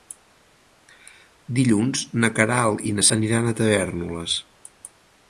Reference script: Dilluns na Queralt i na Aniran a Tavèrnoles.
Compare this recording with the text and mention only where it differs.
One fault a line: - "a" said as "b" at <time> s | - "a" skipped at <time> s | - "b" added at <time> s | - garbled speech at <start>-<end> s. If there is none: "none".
none